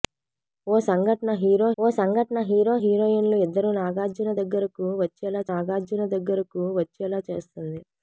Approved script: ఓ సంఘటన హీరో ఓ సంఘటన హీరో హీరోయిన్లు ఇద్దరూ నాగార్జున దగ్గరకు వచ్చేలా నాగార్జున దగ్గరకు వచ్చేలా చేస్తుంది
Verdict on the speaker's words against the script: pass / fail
pass